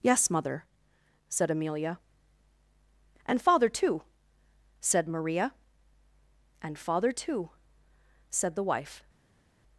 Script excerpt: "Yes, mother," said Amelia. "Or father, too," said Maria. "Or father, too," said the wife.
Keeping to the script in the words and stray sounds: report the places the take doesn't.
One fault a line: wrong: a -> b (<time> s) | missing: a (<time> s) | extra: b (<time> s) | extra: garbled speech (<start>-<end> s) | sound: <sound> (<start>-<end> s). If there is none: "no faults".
wrong: Or -> And (3.3 s)
wrong: Or -> And (6.6 s)